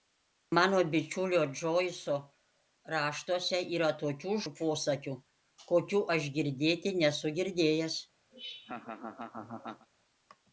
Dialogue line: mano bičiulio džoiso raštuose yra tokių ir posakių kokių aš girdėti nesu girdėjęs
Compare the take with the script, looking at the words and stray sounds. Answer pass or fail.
fail